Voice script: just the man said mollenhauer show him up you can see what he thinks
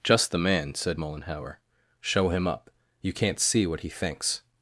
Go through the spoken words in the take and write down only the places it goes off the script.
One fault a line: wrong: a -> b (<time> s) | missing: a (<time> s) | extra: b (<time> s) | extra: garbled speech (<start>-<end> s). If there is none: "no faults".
wrong: can -> can't (3.1 s)